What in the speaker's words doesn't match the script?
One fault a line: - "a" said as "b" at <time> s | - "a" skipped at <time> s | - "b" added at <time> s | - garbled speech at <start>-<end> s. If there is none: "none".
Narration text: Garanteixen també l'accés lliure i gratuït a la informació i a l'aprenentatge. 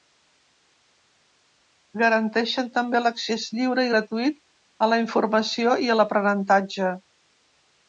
none